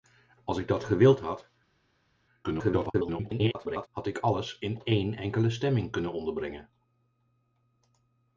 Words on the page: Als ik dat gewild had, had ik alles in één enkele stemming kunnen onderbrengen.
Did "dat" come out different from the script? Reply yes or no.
no